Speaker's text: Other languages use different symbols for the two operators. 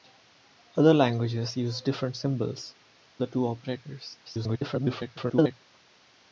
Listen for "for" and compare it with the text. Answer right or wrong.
wrong